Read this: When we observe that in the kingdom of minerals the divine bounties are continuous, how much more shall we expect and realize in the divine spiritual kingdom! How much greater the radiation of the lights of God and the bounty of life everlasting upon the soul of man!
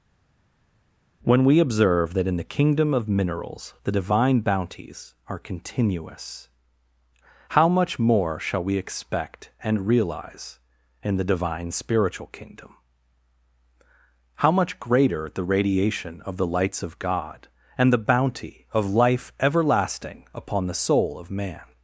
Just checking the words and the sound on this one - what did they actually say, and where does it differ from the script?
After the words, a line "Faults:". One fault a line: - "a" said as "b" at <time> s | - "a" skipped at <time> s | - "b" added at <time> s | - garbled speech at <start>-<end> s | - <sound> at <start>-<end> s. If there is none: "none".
When we observe that in the kingdom of minerals the divine bounties are continuous, how much more shall we expect and realize in the divine spiritual kingdom! How much greater the radiation of the lights of God and the bounty of life everlasting upon the soul of man!
Faults:
none